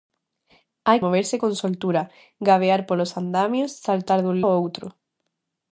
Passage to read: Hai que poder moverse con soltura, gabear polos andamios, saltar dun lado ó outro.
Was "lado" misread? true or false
true